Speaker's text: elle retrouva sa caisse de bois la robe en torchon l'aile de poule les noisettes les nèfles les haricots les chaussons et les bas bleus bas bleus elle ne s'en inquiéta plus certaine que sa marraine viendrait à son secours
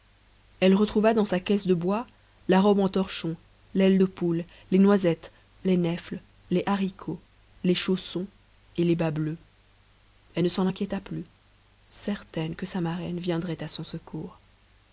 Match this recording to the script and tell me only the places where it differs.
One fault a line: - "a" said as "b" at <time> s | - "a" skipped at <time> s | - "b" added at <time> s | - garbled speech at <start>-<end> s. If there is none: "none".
- "dans" added at 1.1 s
- "bas bleus" skipped at 9.4 s